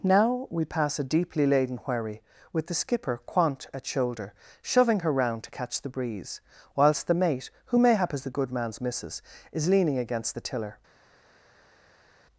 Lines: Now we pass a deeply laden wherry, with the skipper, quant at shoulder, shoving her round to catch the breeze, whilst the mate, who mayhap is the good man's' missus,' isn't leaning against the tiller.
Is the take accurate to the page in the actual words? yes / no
no